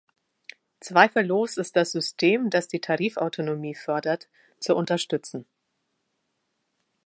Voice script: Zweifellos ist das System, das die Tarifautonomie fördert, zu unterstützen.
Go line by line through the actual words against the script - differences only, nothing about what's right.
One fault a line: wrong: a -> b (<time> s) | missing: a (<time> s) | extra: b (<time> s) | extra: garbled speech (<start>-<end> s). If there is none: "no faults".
no faults